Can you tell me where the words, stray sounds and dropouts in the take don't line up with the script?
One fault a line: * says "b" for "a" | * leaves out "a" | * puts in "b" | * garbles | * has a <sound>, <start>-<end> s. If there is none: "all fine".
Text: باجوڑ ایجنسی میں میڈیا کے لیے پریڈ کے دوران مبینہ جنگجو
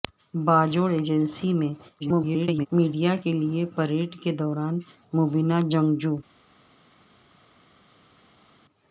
* garbles